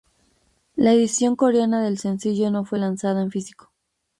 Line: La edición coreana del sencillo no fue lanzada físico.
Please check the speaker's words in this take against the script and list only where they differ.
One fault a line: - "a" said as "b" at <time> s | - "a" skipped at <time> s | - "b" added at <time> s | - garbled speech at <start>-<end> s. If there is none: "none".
- "en" added at 3.2 s